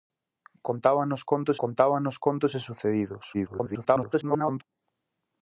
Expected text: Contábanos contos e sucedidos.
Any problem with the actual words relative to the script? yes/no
yes